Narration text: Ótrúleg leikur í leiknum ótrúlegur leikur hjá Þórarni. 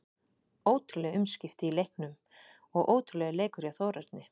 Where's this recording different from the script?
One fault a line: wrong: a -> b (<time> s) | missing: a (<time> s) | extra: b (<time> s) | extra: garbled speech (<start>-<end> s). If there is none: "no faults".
wrong: leikur -> umskipti (1.2 s)
extra: og (2.8 s)